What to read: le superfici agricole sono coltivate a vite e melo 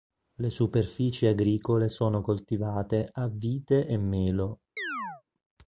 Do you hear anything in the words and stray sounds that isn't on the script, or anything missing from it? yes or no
yes